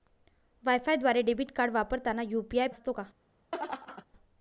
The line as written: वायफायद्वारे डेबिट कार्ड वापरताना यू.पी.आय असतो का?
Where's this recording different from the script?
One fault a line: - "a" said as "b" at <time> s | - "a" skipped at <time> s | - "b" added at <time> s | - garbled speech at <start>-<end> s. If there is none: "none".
none